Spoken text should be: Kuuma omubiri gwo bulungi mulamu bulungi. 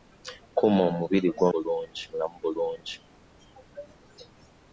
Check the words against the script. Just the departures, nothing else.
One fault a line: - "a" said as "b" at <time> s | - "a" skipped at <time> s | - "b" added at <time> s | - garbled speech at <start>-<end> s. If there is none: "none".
none